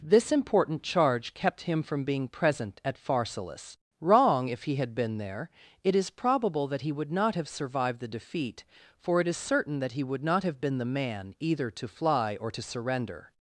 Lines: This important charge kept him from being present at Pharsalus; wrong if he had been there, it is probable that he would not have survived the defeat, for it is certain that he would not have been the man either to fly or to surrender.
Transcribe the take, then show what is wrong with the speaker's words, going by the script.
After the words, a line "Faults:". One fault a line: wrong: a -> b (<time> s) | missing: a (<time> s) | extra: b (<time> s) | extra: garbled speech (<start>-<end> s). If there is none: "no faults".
This important charge kept him from being present at Pharsalus; wrong if he had been there, it is probable that he would not have survived the defeat, for it is certain that he would not have been the man either to fly or to surrender.
Faults:
no faults